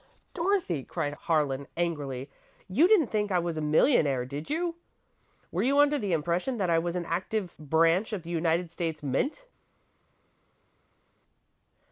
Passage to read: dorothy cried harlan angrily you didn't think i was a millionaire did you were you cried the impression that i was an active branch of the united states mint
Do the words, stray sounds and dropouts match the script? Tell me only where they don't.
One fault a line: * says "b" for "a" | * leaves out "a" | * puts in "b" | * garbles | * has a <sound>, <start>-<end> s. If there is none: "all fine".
* says "under" for "cried"